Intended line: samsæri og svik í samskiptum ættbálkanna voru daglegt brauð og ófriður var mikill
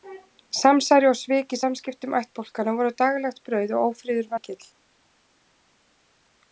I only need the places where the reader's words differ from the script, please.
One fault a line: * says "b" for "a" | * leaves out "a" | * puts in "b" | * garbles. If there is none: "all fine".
* leaves out "var"